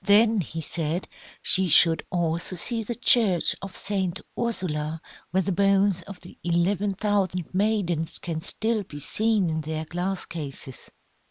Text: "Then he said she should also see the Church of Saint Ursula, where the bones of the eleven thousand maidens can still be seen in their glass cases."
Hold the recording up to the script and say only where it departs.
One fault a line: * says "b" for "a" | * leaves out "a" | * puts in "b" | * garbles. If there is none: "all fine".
all fine